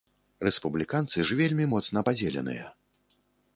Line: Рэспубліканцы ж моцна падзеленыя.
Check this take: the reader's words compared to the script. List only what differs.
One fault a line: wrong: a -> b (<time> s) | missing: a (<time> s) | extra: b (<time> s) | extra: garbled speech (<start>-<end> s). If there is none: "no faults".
extra: вельмі (1.4 s)